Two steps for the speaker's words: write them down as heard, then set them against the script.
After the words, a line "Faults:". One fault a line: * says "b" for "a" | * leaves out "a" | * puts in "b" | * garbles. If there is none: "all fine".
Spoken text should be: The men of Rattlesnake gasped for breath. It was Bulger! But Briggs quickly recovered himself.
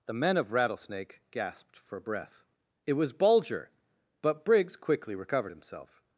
The men of Rattlesnake gasped for breath. It was Bulger! But Briggs quickly recovered himself.
Faults:
all fine